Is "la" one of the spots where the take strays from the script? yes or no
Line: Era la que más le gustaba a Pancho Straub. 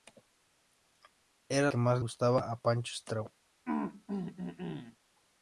yes